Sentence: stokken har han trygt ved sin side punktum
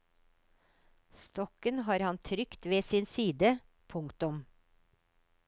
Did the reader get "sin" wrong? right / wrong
right